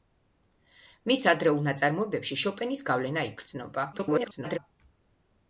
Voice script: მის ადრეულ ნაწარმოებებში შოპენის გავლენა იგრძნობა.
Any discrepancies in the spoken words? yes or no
yes